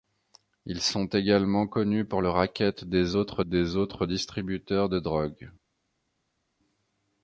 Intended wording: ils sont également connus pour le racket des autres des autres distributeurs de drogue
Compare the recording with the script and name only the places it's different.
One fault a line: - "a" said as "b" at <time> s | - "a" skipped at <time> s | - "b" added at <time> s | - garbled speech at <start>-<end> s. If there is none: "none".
none